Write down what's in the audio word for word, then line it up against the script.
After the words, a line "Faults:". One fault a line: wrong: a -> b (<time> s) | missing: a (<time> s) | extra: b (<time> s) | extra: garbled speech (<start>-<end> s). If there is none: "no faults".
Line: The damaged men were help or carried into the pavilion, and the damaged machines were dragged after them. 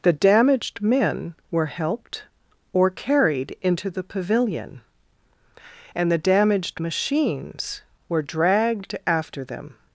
The damaged men were helped or carried into the pavilion, and the damaged machines were dragged after them.
Faults:
wrong: help -> helped (1.7 s)